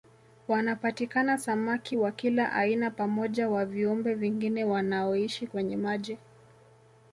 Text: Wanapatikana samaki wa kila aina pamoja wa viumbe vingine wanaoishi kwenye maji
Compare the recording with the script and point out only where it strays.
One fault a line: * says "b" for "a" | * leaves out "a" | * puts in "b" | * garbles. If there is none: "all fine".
all fine